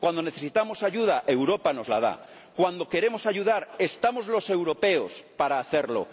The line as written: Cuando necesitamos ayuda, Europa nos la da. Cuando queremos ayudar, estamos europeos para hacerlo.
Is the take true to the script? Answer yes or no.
no